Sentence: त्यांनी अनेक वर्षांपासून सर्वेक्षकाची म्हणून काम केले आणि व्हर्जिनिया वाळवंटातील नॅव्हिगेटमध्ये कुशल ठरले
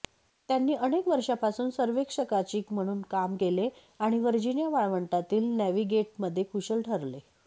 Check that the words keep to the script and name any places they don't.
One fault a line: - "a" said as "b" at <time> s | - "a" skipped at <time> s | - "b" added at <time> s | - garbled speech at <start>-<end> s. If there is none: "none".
none